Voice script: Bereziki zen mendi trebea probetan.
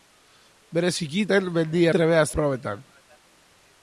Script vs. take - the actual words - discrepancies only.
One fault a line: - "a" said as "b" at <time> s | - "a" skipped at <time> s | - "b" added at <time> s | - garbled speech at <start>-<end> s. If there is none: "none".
none